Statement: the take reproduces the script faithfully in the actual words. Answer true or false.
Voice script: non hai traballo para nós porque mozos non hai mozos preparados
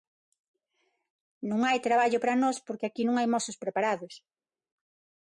false